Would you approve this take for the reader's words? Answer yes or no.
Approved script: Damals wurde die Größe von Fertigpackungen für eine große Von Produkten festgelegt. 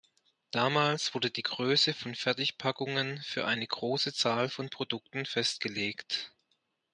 no